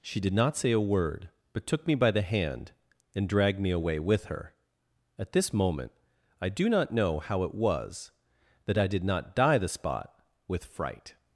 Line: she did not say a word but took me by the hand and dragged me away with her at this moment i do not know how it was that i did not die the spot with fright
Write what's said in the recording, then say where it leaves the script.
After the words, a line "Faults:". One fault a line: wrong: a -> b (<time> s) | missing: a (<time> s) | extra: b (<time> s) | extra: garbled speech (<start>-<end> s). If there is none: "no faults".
she did not say a word but took me by the hand and dragged me away with her at this moment i do not know how it was that i did not die the spot with fright
Faults:
no faults